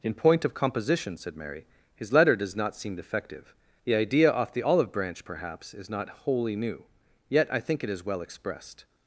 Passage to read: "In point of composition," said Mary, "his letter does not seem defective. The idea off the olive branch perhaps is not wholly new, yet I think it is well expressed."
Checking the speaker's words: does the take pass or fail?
pass